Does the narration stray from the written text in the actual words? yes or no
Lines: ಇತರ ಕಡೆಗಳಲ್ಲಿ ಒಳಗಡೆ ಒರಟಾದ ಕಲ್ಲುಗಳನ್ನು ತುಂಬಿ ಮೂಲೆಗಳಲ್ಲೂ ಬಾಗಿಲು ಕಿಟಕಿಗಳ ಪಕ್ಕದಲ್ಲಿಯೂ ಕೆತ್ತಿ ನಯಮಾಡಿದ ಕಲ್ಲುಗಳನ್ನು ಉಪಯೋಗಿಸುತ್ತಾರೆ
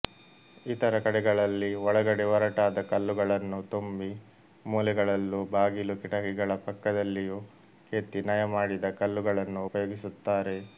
no